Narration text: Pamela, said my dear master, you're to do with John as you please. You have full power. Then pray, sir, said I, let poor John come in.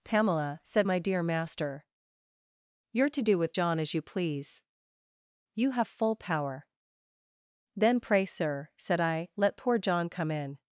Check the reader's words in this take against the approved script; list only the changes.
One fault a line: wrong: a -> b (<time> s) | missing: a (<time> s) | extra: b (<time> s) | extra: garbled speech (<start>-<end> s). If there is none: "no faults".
no faults